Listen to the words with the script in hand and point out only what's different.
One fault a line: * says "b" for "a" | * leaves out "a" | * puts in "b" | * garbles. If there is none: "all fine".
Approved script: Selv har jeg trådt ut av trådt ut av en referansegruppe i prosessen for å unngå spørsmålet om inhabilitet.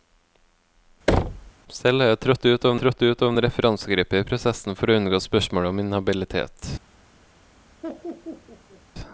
all fine